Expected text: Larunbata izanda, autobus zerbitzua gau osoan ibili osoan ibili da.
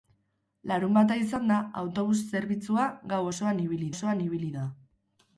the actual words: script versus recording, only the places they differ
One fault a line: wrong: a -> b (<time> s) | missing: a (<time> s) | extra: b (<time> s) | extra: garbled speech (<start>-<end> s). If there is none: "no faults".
no faults